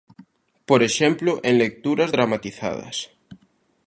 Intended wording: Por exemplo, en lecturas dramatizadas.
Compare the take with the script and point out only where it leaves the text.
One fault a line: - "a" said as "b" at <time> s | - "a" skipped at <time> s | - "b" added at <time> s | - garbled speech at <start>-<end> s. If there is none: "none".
none